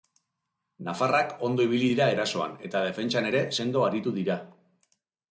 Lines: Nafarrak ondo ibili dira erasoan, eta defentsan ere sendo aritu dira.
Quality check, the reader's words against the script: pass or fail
pass